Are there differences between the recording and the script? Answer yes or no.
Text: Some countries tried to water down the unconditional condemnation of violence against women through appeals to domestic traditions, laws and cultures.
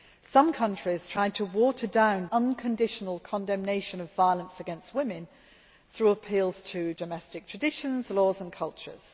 yes